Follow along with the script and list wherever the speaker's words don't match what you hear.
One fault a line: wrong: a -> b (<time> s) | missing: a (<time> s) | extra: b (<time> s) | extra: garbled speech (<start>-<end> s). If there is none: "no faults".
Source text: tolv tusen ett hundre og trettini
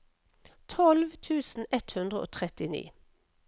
no faults